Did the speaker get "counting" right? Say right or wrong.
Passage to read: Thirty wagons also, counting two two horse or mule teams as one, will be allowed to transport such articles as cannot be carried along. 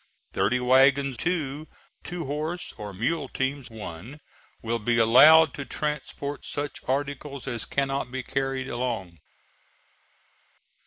wrong